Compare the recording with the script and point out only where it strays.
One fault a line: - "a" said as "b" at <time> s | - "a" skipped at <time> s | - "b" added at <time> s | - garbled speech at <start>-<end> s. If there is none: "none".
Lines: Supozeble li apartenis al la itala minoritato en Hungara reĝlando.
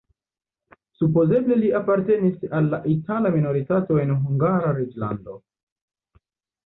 none